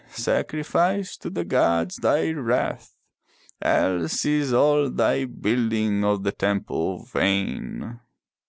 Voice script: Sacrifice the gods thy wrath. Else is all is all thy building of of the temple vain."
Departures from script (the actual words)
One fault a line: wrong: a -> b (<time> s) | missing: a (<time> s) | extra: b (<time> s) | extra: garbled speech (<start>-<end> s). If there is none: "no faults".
extra: to (1.2 s)
missing: is all (4.9 s)
missing: of (6.2 s)